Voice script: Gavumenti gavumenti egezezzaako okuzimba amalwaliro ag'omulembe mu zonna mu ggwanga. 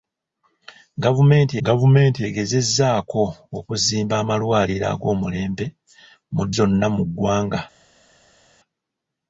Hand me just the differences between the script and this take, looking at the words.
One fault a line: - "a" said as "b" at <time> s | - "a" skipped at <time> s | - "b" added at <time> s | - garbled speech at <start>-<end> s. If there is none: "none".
none